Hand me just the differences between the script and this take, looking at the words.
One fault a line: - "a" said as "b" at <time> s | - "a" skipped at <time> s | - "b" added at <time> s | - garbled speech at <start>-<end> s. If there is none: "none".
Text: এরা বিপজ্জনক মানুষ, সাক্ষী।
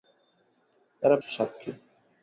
- "বিপজ্জনক মানুষ" skipped at 1.1 s